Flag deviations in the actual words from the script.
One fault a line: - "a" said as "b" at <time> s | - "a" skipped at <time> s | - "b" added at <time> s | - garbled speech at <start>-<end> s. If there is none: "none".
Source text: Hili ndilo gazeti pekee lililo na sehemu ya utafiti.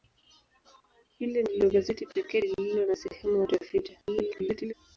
- garbled speech at 4.0-4.7 s